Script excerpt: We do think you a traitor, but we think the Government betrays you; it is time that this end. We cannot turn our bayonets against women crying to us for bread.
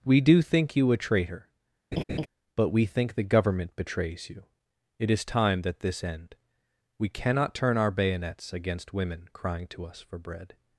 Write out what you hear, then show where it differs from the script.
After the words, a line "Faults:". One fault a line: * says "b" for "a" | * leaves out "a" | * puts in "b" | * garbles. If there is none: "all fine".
We do think you a traitor, but we think the Government betrays you; it is time that this end. We cannot turn our bayonets against women crying to us for bread.
Faults:
all fine